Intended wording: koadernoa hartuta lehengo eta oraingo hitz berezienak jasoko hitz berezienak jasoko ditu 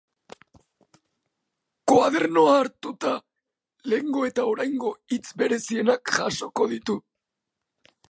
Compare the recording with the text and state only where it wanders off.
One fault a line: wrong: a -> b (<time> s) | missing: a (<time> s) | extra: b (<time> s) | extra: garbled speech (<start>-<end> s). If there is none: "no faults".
missing: hitz berezienak jasoko (6.7 s)